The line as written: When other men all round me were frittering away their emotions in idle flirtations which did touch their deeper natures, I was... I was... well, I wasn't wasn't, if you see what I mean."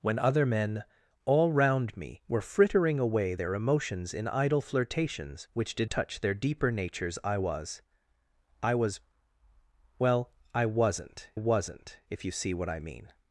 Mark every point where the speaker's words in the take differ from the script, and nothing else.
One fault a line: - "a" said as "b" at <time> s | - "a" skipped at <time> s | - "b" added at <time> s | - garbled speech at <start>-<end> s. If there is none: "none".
none